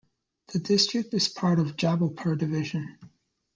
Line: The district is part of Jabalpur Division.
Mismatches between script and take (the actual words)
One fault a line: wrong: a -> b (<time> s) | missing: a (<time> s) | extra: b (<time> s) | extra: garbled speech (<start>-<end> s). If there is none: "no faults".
no faults